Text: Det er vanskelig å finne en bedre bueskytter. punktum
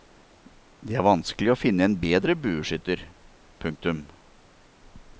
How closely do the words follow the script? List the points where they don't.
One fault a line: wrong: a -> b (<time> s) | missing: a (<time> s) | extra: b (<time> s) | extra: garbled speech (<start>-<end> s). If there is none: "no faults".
no faults